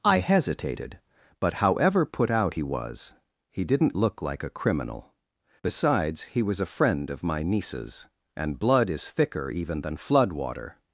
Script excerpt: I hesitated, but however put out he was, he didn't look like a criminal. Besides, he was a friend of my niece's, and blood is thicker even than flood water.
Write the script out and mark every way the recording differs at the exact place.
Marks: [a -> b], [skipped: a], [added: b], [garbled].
I hesitated, but however put out he was, he didn't look like a criminal. Besides, he was a friend of my niece's, and blood is thicker even than flood water.